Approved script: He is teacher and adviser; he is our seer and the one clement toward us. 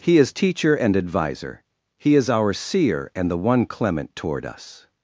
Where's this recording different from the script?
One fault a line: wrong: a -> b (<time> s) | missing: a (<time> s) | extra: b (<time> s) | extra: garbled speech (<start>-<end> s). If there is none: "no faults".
no faults